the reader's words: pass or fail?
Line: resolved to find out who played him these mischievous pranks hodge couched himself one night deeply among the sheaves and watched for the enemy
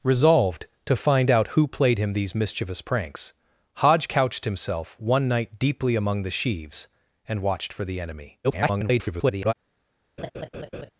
fail